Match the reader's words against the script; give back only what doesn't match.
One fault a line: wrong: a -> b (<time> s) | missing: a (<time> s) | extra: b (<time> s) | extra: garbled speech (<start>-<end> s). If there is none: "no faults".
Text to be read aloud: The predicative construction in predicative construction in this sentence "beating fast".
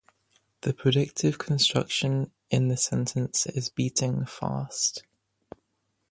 missing: predicative construction in (2.7 s)
extra: is (3.5 s)